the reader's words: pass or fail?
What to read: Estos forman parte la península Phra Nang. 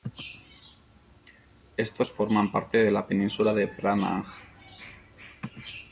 fail